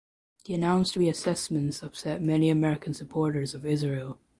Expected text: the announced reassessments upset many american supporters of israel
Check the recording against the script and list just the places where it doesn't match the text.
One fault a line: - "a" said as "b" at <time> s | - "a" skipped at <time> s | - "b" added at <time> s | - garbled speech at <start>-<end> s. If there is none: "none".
none